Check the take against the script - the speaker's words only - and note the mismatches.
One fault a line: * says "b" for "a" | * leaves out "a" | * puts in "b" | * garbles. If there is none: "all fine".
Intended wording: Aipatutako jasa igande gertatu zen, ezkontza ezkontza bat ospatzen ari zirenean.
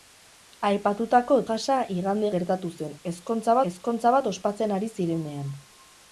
all fine